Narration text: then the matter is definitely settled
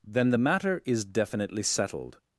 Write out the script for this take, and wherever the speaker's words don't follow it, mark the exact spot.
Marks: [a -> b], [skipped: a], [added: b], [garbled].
then the matter is definitely settled